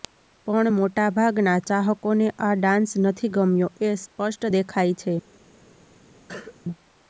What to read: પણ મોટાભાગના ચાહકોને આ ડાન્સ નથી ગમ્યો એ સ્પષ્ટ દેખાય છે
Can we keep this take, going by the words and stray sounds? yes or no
no